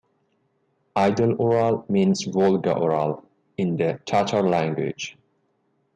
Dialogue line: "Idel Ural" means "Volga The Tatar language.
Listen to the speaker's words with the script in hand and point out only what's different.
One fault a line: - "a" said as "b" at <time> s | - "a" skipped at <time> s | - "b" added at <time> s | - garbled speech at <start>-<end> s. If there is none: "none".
- "Ural in" added at 2.7 s